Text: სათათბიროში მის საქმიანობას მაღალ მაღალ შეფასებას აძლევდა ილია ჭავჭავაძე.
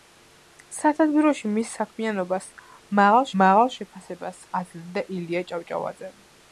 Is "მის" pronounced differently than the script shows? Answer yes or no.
no